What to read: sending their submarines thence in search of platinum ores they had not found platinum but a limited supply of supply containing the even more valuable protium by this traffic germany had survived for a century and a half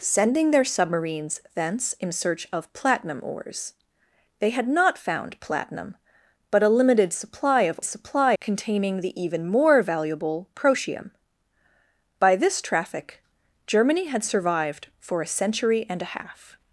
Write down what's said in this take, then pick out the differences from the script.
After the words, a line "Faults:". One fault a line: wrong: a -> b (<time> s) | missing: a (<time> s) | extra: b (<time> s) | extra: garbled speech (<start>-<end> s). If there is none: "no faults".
sending their submarines thence in search of platinum ores they had not found platinum but a limited supply of supply containing the even more valuable protium by this traffic germany had survived for a century and a half
Faults:
no faults